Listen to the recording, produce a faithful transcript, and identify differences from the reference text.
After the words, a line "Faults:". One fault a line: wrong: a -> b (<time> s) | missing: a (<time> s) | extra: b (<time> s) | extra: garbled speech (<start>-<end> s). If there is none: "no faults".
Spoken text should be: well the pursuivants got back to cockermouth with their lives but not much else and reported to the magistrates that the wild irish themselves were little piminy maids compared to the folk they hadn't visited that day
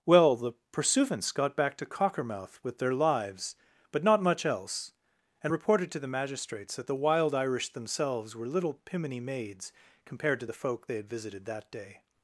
well the pursuivants got back to cockermouth with their lives but not much else and reported to the magistrates that the wild irish themselves were little piminy maids compared to the folk they had visited that day
Faults:
wrong: hadn't -> had (11.0 s)